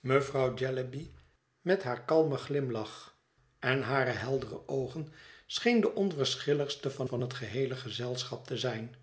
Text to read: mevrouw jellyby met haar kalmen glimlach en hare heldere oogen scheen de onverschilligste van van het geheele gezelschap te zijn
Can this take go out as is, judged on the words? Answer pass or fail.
pass